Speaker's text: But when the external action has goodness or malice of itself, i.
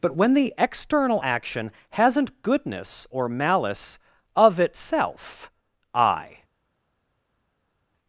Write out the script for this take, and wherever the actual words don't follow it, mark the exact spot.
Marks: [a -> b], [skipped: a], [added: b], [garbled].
But when the external action [has -> hasn't] goodness or malice of itself, i.